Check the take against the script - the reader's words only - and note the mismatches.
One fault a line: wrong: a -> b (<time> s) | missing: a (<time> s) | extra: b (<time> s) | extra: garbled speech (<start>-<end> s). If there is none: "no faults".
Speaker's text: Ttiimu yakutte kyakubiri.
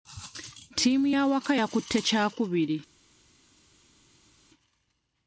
extra: y'awaka (1.1 s)